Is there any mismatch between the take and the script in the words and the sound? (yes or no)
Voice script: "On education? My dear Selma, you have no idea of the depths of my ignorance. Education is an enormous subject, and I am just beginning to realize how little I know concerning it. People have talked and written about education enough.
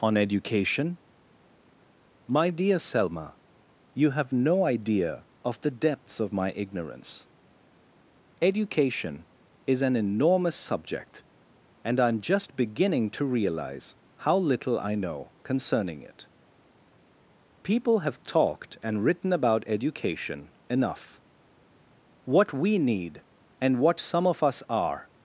yes